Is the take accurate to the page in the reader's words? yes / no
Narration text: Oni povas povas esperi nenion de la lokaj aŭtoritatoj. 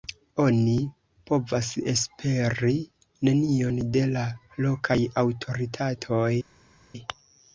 no